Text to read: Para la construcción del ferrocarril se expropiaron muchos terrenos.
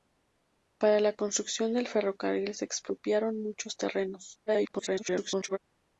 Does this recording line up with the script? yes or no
no